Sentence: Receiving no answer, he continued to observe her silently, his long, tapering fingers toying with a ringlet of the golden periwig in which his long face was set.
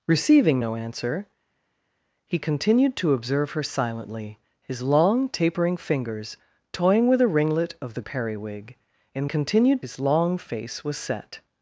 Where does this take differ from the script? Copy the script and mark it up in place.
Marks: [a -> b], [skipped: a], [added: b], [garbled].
Receiving no answer, he continued to observe her silently, his long, tapering fingers toying with a ringlet of the [skipped: golden] periwig in [which -> continued] his long face was set.